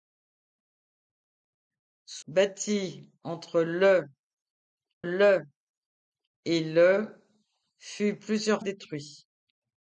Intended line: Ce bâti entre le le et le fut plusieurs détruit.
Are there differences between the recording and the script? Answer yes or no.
no